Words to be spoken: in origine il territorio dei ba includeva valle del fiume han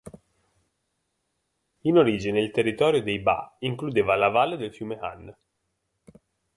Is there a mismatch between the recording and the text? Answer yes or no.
yes